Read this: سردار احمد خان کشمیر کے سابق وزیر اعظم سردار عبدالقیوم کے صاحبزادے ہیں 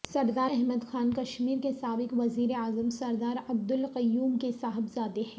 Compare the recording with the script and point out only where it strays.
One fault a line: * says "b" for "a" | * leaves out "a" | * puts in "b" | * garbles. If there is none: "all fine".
all fine